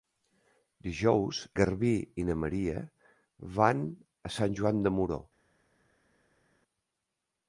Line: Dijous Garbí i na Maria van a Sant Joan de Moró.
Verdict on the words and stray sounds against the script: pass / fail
pass